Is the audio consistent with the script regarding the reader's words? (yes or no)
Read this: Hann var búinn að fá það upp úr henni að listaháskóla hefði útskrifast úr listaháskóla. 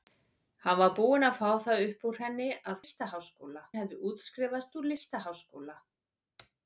yes